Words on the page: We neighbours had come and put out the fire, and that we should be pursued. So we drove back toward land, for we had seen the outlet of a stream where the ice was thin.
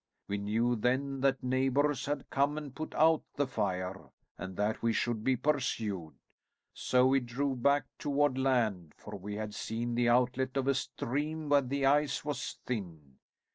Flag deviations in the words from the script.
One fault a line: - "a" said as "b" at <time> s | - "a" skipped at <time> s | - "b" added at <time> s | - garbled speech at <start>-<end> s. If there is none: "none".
- "knew then that" added at 0.4 s